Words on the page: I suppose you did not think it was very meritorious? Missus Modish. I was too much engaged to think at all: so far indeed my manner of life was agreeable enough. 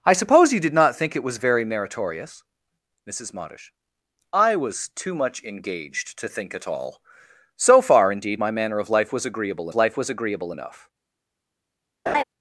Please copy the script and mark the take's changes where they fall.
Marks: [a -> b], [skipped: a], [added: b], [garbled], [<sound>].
I suppose you did not think it was very meritorious? Missus Modish. I was too much engaged to think at all: so far indeed my manner of life was agreeable [added: life was agreeable] enough. [laugh]